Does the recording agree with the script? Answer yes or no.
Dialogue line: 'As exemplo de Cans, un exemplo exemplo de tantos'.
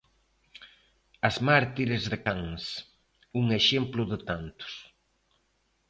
no